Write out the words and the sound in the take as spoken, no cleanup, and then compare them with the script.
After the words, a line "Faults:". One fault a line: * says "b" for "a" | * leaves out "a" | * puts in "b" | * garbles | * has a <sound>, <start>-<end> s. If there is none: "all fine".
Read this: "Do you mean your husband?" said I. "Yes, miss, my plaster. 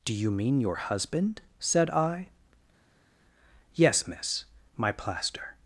"Do you mean your husband?" said I. "Yes, miss, my plaster.
Faults:
all fine